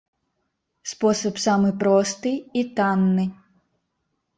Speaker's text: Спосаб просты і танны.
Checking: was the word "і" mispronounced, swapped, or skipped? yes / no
no